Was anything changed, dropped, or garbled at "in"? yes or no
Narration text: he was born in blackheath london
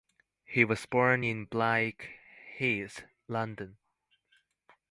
no